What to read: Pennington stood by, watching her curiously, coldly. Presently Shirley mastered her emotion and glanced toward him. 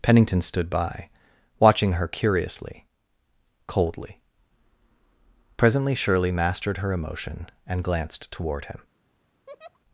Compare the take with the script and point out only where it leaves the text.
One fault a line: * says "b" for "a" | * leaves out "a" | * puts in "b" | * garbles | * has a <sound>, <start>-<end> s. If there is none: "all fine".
* has a laugh, 9.5-9.8 s